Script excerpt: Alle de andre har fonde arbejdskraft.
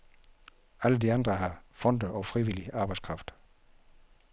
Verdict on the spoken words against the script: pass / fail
fail